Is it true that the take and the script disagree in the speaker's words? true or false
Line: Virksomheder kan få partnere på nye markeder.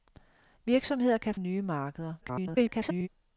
true